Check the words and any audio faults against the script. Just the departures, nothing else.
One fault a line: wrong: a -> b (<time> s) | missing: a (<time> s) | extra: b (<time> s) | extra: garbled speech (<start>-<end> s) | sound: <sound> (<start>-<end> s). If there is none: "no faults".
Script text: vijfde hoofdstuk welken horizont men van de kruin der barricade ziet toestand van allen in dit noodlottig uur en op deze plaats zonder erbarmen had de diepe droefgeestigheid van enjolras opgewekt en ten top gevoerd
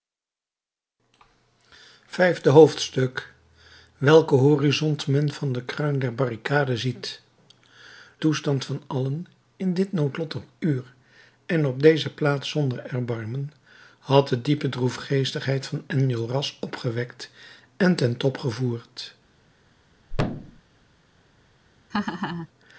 sound: thud (20.1-20.6 s)
sound: laugh (21.9-22.5 s)